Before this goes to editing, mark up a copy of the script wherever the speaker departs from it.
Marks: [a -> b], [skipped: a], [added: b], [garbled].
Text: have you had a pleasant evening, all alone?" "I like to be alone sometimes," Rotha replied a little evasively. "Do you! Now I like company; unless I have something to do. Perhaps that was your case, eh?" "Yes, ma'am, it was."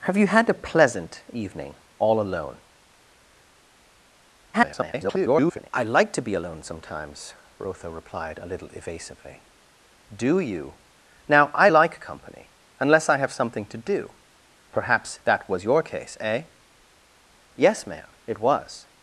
have you had a pleasant evening, all alone?" [garbled] "I like to be alone sometimes," Rotha replied a little evasively. "Do you! Now I like company; unless I have something to do. Perhaps that was your case, eh?" "Yes, ma'am, it was."